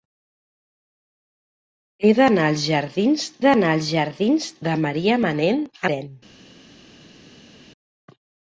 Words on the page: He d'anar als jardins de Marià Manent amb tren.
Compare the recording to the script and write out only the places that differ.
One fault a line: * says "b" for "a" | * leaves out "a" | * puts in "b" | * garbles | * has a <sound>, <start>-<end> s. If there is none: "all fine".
* puts in "d'anar als jardins"
* leaves out "amb"